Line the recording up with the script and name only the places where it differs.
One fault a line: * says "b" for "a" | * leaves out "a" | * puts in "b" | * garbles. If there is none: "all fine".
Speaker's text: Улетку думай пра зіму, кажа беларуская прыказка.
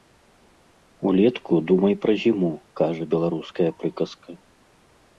all fine